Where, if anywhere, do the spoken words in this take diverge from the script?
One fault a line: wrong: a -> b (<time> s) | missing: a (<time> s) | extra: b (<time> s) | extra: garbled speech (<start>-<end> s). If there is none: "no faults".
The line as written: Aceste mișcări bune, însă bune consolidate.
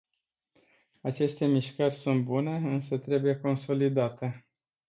extra: sunt (1.9 s)
wrong: bune -> trebuie (3.0 s)